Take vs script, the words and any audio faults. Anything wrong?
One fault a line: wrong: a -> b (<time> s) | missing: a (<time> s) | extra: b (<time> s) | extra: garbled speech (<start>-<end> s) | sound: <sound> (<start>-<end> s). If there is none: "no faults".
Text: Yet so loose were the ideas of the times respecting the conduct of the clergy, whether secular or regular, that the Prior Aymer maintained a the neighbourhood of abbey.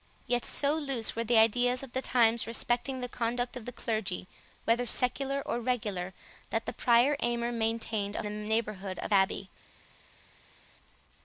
no faults